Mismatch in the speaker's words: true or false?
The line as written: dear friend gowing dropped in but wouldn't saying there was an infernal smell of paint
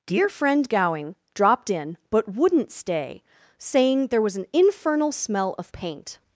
true